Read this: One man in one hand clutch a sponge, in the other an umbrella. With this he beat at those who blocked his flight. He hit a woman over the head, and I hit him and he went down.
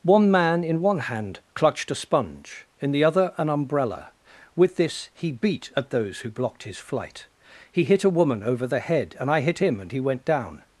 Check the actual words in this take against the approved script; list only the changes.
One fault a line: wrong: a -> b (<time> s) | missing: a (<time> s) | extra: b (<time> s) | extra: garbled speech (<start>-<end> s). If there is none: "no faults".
wrong: clutch -> clutched (1.5 s)